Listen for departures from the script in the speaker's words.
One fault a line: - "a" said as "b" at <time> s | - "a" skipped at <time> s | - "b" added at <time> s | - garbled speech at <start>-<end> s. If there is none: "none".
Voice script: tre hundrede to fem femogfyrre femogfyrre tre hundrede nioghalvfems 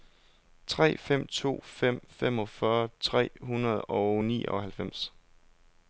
- "hundrede" said as "fem" at 1.0 s
- "femogfyrre" skipped at 2.9 s
- "og" added at 3.8 s